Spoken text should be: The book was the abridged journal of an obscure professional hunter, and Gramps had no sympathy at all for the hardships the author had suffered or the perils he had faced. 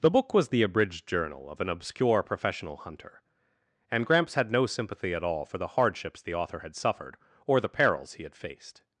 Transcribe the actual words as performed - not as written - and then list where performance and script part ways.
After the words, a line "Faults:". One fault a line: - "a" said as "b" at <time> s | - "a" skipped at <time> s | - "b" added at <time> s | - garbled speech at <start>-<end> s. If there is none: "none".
The book was the abridged journal of an obscure professional hunter, and Gramps had no sympathy at all for the hardships the author had suffered or the perils he had faced.
Faults:
none